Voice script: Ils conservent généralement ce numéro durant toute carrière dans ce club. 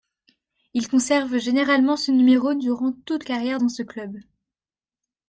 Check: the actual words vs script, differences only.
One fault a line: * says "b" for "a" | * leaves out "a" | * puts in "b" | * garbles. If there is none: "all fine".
all fine